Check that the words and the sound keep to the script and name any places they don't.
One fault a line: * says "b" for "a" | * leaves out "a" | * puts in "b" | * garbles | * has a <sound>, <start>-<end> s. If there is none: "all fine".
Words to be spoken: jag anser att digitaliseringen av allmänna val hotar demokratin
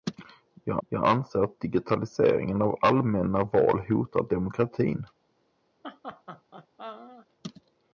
* puts in "jag"
* has a laugh, 5.8-7.3 s